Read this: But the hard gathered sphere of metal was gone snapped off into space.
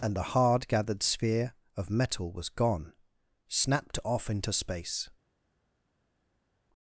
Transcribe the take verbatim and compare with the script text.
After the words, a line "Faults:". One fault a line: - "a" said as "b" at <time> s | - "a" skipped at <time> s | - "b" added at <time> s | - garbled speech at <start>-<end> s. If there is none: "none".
And the hard gathered sphere of metal was gone snapped off into space.
Faults:
- "But" said as "And" at 0.0 s